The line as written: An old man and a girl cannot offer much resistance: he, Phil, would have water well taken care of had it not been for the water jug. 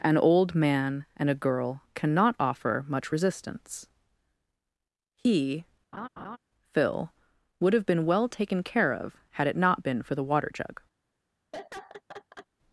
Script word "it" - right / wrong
right